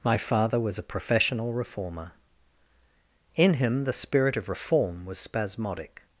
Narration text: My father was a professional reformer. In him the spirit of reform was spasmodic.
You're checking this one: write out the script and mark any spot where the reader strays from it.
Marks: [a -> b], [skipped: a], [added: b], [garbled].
My father was a professional reformer. In him the spirit of reform was spasmodic.